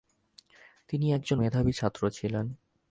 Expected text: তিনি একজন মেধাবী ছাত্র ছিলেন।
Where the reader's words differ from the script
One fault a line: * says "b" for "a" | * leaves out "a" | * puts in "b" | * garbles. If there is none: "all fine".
all fine